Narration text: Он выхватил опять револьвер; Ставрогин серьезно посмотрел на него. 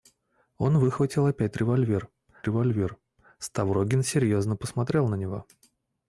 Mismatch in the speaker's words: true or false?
true